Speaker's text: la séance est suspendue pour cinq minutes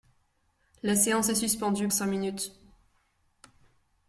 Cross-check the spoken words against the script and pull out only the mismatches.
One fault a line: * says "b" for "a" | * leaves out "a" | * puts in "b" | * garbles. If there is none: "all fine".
* leaves out "pour"